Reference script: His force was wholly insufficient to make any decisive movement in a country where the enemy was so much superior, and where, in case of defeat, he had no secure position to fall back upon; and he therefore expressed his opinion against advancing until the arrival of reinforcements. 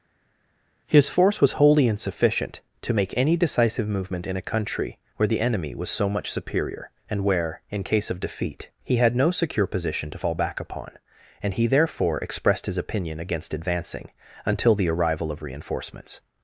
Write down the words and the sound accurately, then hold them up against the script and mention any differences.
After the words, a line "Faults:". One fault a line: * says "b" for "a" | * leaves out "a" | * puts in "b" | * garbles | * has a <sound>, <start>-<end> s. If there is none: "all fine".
His force was wholly insufficient to make any decisive movement in a country where the enemy was so much superior, and where, in case of defeat, he had no secure position to fall back upon; and he therefore expressed his opinion against advancing until the arrival of reinforcements.
Faults:
all fine